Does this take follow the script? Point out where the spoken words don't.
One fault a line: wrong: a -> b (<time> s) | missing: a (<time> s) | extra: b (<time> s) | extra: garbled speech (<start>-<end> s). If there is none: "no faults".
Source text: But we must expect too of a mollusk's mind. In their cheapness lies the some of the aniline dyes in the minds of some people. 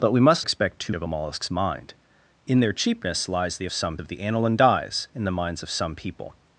no faults